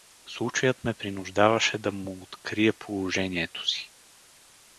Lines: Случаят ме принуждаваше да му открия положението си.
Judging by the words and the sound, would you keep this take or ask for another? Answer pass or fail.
pass